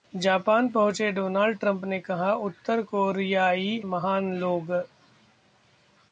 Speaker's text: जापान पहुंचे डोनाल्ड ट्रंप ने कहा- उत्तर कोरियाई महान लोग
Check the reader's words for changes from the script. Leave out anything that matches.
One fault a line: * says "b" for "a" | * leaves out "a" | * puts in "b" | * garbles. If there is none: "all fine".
all fine